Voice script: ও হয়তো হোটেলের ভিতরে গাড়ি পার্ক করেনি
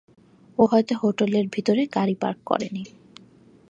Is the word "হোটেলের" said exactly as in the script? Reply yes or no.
yes